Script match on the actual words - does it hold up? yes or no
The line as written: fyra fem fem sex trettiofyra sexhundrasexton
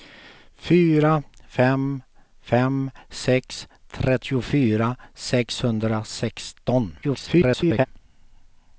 no